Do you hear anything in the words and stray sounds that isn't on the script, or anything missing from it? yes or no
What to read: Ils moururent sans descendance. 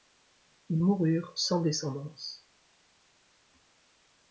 no